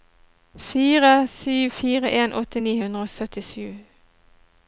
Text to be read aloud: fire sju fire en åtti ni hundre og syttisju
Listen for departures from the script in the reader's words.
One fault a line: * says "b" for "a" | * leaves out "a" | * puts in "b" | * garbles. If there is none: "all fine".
all fine